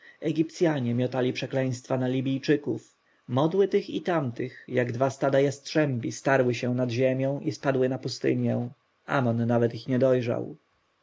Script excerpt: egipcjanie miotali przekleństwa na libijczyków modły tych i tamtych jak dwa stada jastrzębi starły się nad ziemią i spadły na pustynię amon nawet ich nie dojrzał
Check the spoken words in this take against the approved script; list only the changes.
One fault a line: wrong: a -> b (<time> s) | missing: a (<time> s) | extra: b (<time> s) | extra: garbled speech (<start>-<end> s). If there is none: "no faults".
no faults